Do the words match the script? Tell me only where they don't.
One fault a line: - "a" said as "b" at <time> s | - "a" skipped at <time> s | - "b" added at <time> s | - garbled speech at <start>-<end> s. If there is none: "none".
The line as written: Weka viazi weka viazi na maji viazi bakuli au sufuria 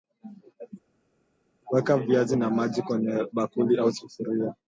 - "weka viazi" skipped at 2.4 s
- "viazi" said as "kwenye" at 2.8 s